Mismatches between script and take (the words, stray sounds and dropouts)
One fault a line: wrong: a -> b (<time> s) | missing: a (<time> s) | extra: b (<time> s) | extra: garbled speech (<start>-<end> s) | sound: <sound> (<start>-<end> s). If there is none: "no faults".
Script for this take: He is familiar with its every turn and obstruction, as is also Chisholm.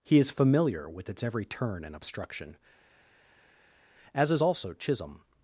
no faults